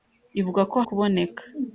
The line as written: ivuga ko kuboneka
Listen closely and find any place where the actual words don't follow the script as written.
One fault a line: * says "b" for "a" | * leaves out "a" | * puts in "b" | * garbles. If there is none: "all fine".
all fine